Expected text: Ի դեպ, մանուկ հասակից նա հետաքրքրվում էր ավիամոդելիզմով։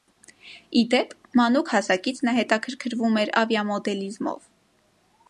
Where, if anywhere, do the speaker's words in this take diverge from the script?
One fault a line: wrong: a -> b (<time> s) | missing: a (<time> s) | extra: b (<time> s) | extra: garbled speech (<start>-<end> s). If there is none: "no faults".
no faults